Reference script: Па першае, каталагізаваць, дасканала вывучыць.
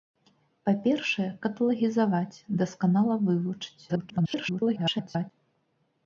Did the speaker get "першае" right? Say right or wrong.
right